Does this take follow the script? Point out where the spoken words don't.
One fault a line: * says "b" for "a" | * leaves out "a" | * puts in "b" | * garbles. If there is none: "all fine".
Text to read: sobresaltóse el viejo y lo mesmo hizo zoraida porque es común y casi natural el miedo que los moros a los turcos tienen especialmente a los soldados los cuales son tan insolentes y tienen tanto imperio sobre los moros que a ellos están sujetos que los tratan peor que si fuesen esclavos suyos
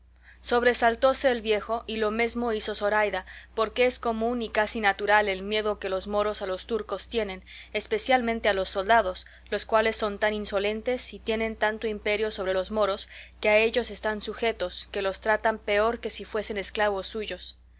all fine